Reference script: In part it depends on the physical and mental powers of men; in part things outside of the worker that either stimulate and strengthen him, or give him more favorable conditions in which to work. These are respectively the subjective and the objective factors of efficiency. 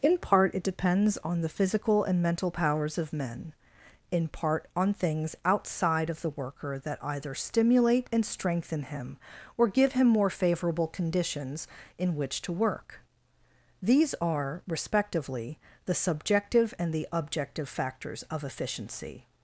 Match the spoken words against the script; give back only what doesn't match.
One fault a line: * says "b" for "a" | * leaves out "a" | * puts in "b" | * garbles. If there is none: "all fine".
* puts in "on"